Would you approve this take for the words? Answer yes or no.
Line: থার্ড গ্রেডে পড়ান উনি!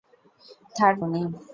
no